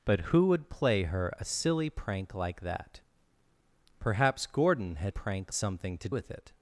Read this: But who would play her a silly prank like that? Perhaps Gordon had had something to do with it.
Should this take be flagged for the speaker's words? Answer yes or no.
yes